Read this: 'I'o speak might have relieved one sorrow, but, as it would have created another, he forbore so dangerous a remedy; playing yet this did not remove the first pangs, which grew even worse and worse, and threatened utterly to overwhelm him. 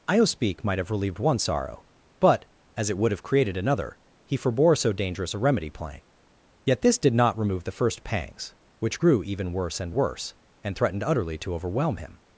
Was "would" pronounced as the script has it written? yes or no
yes